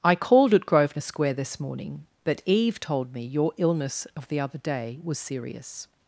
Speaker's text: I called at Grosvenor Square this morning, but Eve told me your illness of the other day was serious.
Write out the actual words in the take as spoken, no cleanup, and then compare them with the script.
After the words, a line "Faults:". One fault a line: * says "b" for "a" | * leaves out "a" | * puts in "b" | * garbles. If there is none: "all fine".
I called at Grosvenor Square this morning, but Eve told me your illness of the other day was serious.
Faults:
all fine